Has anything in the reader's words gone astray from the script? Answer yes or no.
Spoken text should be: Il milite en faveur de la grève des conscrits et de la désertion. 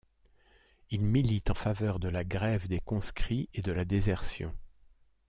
no